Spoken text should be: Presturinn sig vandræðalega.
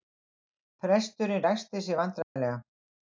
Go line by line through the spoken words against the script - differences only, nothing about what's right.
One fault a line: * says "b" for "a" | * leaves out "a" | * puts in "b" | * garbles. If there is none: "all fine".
* puts in "ræskti"